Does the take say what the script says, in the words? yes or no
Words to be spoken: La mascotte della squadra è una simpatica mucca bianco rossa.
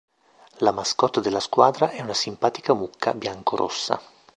yes